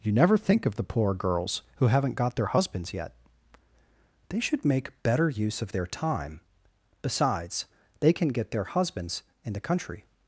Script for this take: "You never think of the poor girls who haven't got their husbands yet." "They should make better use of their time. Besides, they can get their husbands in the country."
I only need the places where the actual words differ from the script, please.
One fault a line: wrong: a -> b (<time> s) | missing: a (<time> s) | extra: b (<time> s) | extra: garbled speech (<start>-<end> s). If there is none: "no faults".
no faults